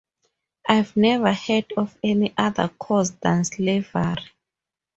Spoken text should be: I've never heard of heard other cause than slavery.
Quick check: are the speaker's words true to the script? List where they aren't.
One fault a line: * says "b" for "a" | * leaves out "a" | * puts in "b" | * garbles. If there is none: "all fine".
* says "any" for "heard"